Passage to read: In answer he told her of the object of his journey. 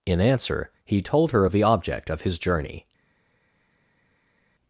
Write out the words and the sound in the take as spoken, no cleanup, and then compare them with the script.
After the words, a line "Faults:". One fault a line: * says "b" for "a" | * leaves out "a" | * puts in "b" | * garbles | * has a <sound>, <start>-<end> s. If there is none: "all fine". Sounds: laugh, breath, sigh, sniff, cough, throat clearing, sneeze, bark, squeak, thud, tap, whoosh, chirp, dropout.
In answer he told her of the object of his journey.
Faults:
all fine